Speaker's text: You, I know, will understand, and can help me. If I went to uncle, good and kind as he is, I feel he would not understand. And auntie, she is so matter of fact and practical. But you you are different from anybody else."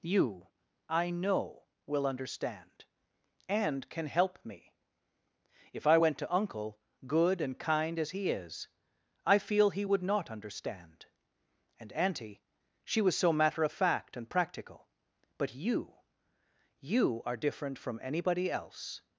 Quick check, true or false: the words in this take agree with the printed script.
false